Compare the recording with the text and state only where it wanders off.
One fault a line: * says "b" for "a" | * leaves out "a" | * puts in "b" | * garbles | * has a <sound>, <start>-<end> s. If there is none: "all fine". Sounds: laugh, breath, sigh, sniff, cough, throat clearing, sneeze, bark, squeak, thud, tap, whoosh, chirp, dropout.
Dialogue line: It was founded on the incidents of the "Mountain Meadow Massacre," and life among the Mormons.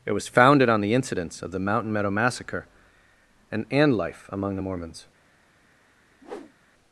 * puts in "and"
* has a whoosh, 6.2-6.6 s